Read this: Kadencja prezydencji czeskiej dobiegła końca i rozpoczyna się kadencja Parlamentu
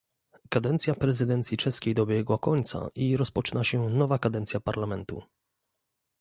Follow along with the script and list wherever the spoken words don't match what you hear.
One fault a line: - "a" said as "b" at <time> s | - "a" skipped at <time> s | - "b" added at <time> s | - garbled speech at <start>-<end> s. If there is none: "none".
- "nowa" added at 3.9 s